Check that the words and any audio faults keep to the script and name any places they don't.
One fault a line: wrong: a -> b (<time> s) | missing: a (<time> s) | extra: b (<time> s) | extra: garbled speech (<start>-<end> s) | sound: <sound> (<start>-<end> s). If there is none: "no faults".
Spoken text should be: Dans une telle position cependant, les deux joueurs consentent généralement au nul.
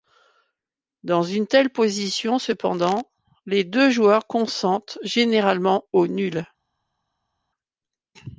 no faults